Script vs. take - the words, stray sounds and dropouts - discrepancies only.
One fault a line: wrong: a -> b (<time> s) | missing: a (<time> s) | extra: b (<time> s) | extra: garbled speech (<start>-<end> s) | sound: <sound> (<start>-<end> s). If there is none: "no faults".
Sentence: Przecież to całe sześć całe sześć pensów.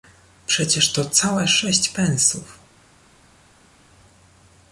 missing: całe sześć (1.9 s)